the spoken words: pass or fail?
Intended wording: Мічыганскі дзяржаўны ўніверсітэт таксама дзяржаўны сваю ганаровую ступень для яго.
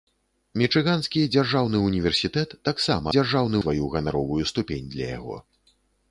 pass